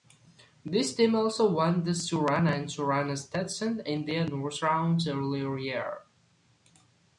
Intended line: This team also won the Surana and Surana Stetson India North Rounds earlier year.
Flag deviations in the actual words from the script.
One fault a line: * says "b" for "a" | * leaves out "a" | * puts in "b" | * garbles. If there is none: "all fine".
all fine